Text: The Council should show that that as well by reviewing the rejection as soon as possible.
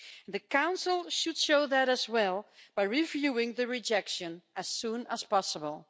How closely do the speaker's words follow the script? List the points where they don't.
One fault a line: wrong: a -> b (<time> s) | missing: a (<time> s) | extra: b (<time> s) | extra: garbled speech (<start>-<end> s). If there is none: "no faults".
missing: that (1.9 s)